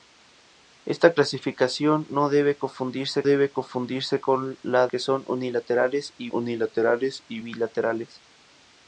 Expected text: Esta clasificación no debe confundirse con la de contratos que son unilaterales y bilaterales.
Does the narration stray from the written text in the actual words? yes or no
yes